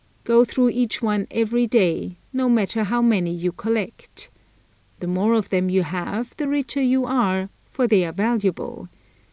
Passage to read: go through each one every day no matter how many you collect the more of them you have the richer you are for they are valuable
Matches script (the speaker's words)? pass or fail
pass